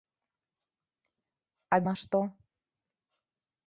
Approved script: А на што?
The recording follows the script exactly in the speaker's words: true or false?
true